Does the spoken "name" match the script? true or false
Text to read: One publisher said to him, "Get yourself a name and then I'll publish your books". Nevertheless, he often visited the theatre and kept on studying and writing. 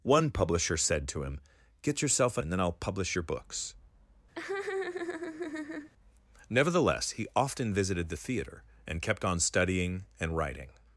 false